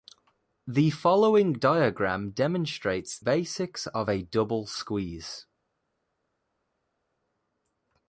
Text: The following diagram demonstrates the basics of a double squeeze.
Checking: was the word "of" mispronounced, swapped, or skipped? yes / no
no